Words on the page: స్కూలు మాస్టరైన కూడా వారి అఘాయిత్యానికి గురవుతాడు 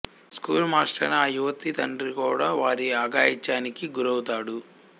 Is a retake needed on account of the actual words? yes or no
yes